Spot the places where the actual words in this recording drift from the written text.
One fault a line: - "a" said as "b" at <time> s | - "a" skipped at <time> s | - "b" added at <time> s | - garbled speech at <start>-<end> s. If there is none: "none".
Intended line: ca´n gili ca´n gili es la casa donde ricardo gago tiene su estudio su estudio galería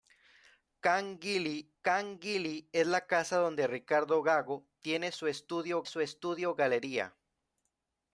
none